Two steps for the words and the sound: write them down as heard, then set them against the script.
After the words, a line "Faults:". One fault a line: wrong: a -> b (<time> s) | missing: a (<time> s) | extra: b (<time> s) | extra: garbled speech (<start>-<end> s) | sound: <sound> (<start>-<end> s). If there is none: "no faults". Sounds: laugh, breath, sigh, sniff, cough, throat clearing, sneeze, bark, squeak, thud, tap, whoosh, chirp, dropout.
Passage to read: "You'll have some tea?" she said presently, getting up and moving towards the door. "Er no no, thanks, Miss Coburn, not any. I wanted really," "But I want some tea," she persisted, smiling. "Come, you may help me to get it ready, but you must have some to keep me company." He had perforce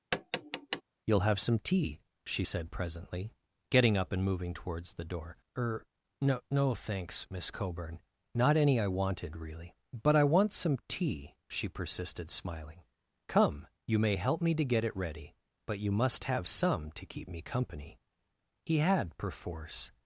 "You'll have some tea?" she said presently, getting up and moving towards the door. "Er no no, thanks, Miss Coburn, not any. I wanted really," "But I want some tea," she persisted, smiling. "Come, you may help me to get it ready, but you must have some to keep me company." He had perforce
Faults:
sound: tap (0.1-0.8 s)